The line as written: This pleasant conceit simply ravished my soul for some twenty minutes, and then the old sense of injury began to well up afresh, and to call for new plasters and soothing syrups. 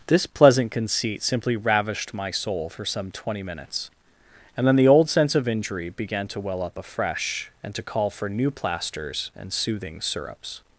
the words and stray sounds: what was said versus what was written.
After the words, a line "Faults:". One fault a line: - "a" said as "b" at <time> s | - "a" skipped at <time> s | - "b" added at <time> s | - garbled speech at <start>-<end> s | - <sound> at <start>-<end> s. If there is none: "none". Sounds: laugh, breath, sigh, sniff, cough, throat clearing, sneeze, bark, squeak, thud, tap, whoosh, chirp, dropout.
This pleasant conceit simply ravished my soul for some twenty minutes, and then the old sense of injury began to well up afresh, and to call for new plasters and soothing syrups.
Faults:
none